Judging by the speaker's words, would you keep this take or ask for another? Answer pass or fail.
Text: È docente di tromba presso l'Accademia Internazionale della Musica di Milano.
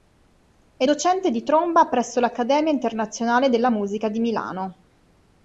pass